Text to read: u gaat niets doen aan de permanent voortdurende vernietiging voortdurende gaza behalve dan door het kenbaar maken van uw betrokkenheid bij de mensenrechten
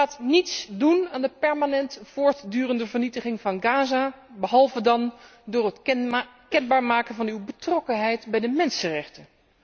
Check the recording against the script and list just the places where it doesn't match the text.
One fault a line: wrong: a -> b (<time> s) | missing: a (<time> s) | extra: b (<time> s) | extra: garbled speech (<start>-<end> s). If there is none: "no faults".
wrong: voortdurende -> van (3.4 s)